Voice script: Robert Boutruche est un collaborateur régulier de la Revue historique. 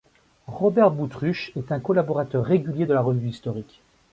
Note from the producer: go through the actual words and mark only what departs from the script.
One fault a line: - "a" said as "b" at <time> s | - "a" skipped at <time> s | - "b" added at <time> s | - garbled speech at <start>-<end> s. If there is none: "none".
none